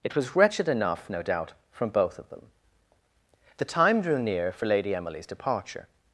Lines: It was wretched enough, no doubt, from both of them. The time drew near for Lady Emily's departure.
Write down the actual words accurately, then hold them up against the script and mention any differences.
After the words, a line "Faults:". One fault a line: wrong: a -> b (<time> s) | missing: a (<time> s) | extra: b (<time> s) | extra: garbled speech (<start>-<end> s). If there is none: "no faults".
It was wretched enough, no doubt, from both of them. The time drew near for Lady Emily's departure.
Faults:
no faults